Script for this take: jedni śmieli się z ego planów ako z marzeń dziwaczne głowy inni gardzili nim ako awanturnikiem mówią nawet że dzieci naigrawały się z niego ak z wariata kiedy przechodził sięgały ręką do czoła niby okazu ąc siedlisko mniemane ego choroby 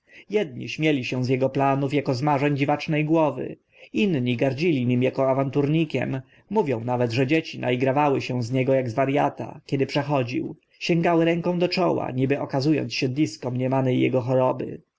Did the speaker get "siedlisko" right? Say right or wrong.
right